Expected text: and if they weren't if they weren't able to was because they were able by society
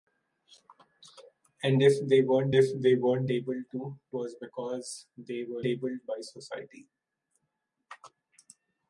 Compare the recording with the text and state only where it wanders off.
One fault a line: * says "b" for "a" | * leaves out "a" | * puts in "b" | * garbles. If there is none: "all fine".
all fine